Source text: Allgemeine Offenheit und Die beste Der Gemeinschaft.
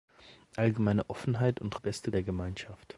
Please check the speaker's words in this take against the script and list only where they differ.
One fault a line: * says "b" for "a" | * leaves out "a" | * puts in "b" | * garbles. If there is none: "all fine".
all fine